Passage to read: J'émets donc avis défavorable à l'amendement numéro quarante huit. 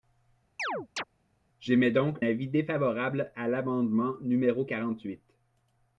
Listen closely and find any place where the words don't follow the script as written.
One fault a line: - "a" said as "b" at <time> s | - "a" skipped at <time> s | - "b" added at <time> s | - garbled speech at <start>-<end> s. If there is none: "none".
none